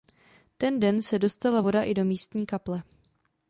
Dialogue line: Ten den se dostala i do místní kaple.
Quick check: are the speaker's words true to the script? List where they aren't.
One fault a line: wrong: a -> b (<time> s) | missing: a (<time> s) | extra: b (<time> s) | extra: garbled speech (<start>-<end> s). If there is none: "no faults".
extra: voda (1.6 s)